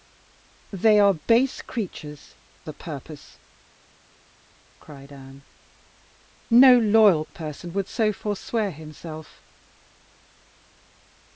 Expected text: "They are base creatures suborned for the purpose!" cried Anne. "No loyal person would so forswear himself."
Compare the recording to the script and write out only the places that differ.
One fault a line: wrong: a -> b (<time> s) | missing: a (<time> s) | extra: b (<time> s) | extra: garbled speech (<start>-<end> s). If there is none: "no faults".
missing: suborned for (2.4 s)